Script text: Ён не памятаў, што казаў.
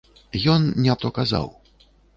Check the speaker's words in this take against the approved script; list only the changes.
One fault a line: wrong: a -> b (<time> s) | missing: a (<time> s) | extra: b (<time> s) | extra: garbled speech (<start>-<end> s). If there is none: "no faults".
missing: памятаў (0.9 s)